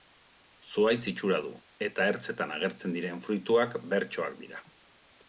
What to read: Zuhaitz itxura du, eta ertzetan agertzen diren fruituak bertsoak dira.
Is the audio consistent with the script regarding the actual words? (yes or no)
yes